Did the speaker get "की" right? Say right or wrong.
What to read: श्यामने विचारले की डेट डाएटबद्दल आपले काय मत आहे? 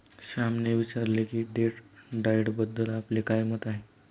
right